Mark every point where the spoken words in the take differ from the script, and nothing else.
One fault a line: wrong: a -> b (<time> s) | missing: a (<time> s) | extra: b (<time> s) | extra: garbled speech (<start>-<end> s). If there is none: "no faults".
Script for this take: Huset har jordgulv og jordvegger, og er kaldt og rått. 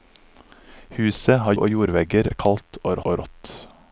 missing: jordgulv (1.5 s)
missing: og (2.3 s)
extra: og (3.0 s)